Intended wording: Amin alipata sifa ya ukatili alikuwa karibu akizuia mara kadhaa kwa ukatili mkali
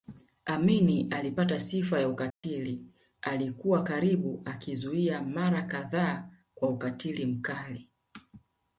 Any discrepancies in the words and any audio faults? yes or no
yes